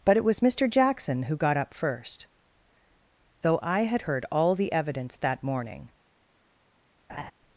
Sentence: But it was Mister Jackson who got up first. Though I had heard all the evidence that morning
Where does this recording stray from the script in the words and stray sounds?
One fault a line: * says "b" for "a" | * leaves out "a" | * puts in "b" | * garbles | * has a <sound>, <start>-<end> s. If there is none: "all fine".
* has a laugh, 7.1-7.3 s